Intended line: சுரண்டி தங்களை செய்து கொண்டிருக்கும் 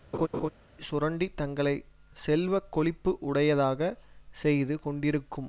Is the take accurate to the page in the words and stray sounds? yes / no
no